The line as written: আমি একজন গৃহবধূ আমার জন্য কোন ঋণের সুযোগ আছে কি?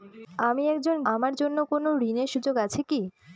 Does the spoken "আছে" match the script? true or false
true